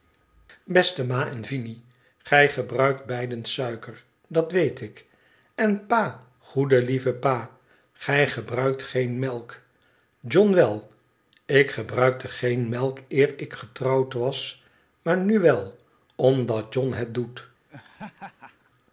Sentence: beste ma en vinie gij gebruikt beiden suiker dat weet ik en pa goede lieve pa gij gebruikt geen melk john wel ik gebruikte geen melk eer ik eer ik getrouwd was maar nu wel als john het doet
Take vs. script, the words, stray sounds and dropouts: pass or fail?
fail